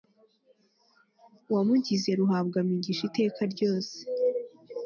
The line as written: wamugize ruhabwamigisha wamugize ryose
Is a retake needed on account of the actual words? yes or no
yes